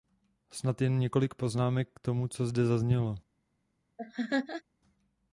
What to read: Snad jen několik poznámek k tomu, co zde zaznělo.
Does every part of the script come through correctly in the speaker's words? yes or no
yes